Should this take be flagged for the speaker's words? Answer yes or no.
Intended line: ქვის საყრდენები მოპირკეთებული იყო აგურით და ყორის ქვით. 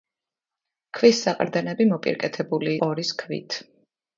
yes